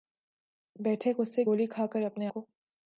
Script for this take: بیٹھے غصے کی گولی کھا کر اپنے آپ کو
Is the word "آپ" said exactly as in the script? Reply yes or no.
no